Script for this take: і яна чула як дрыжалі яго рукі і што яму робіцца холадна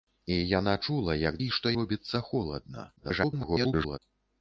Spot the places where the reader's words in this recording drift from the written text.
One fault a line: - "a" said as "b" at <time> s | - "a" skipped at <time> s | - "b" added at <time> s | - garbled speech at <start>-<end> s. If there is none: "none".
- "дрыжалі яго рукі" skipped at 1.4 s
- "яму" skipped at 1.7 s
- garbled speech at 3.0-4.0 s